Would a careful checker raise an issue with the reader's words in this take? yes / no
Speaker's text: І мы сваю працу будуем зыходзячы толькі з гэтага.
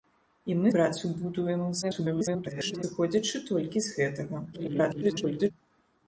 yes